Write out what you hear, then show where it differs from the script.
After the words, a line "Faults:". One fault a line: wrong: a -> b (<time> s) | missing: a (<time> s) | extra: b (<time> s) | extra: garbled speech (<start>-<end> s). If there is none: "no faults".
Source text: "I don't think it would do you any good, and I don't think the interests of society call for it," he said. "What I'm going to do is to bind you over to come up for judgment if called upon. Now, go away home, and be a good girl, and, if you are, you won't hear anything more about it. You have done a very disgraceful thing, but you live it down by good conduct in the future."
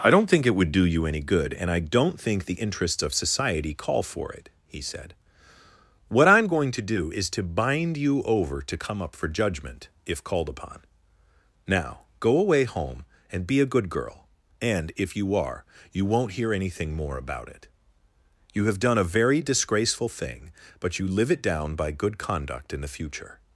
"I don't think it would do you any good, and I don't think the interests of society call for it," he said. "What I'm going to do is to bind you over to come up for judgment if called upon. Now, go away home, and be a good girl, and, if you are, you won't hear anything more about it. You have done a very disgraceful thing, but you live it down by good conduct in the future."
Faults:
no faults